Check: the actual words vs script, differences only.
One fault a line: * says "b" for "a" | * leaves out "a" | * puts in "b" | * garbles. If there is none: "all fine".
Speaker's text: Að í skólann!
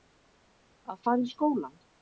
* puts in "fara"